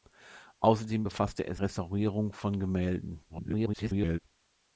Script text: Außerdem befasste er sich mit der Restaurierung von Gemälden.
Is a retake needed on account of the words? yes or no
yes